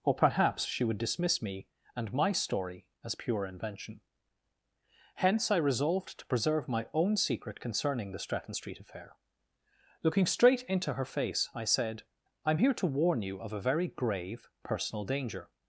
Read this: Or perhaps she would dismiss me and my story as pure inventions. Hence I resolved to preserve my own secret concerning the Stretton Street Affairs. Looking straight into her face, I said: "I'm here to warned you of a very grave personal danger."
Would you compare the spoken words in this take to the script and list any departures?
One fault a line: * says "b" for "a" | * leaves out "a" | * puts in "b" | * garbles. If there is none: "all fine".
* says "invention" for "inventions"
* says "Affair" for "Affairs"
* says "warn" for "warned"